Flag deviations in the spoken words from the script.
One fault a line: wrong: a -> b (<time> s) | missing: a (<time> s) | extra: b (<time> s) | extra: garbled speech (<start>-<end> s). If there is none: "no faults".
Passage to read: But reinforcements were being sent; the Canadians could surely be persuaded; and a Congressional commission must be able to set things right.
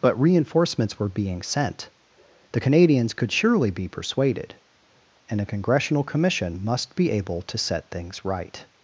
no faults